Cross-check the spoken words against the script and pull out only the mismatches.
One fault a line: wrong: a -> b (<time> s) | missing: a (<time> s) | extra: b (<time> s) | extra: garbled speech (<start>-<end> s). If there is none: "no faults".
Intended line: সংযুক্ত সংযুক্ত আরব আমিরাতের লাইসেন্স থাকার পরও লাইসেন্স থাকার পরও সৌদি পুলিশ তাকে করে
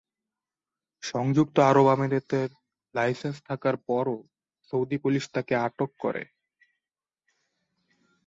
missing: সংযুক্ত (1.6 s)
missing: লাইসেন্স থাকার পরও (4.2 s)
extra: আটক (5.7 s)